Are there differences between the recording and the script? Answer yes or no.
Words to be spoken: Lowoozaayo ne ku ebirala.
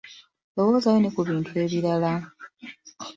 yes